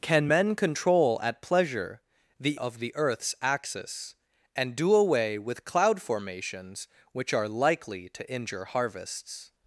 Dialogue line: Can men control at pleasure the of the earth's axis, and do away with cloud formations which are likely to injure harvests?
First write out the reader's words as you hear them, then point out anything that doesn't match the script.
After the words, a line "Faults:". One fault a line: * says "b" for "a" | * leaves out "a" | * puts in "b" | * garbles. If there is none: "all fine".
Can men control at pleasure the of the earth's axis, and do away with cloud formations which are likely to injure harvests?
Faults:
all fine